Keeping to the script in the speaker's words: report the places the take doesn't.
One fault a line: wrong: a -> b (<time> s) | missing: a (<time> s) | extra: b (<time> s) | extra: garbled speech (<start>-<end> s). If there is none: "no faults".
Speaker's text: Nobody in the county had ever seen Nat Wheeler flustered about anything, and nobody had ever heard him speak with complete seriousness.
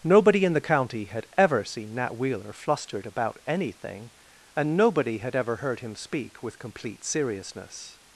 no faults